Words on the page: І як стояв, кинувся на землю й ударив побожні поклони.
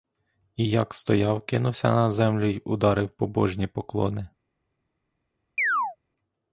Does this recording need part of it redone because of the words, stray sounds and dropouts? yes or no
yes